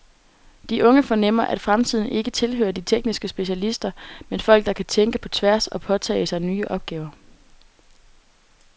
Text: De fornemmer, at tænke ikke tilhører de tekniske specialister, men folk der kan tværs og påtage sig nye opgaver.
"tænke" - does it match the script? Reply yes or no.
no